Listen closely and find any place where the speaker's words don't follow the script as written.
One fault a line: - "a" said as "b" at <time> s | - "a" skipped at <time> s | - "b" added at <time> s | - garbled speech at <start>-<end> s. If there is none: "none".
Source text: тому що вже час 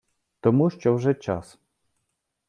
none